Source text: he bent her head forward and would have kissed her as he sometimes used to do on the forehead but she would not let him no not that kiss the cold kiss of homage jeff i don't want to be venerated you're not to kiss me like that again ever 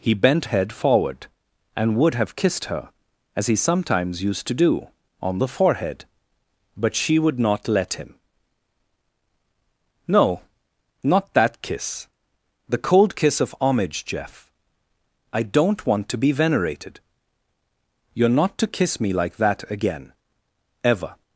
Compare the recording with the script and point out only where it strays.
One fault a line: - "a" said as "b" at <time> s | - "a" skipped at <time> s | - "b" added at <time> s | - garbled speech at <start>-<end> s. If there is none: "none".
- "her" skipped at 0.5 s